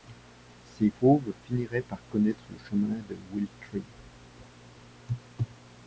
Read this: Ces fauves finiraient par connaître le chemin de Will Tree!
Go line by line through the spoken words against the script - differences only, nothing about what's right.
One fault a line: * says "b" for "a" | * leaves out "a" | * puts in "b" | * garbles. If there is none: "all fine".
all fine